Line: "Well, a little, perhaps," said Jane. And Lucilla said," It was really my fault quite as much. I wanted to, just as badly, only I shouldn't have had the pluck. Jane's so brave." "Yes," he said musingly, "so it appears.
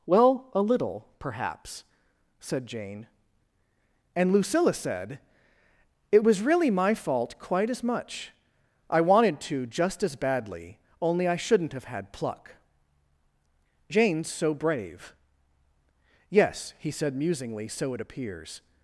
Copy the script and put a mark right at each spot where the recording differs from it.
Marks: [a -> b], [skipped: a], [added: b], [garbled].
"Well, a little, perhaps," said Jane. And Lucilla said," It was really my fault quite as much. I wanted to, just as badly, only I shouldn't have had [skipped: the] pluck. Jane's so brave." "Yes," he said musingly, "so it appears.